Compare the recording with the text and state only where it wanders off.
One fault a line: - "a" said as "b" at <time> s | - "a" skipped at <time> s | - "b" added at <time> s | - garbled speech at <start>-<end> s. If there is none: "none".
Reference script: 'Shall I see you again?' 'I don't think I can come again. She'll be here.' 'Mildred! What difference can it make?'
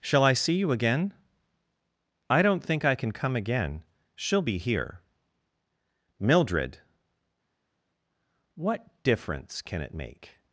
none